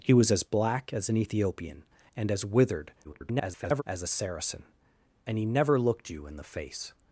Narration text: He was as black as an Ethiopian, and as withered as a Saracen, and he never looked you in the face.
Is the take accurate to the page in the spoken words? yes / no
no